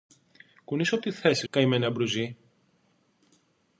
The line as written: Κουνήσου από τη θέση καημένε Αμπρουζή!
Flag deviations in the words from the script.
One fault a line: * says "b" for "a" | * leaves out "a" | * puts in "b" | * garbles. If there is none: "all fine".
all fine